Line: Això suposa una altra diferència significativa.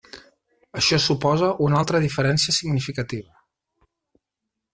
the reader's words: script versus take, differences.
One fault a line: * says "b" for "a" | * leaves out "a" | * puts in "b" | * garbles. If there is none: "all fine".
all fine